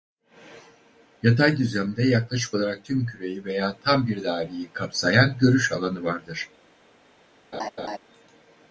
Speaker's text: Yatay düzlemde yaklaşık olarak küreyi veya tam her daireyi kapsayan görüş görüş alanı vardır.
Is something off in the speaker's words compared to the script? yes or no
yes